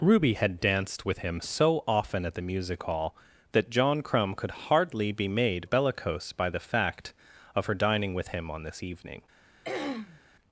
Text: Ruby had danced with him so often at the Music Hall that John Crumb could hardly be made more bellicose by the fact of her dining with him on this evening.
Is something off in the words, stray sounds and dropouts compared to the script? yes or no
yes